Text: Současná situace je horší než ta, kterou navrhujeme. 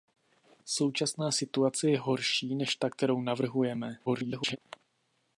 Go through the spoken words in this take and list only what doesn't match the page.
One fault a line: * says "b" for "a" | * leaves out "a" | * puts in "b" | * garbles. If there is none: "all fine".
* garbles